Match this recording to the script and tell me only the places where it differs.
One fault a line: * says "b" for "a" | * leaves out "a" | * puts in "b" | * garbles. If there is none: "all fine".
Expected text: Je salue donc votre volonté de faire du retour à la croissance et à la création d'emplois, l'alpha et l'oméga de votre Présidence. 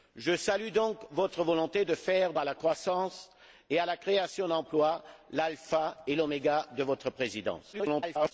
* leaves out "du retour"
* garbles